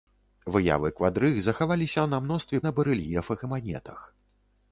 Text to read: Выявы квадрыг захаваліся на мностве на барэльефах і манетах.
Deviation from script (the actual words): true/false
false